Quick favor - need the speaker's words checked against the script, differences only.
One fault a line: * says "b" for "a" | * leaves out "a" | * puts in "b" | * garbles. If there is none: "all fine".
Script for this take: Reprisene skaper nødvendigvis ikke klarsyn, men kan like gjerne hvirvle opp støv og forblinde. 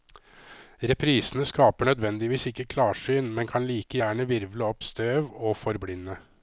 all fine